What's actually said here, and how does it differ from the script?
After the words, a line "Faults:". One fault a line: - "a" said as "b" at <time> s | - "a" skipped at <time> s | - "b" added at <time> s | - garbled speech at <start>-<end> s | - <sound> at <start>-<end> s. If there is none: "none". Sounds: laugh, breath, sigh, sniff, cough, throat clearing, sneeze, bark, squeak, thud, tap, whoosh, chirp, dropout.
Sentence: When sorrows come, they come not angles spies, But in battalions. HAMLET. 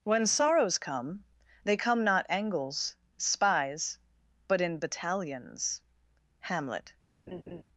When sorrows come, they come not angles spies, But in battalions. HAMLET.
Faults:
- laugh at 7.3-7.6 s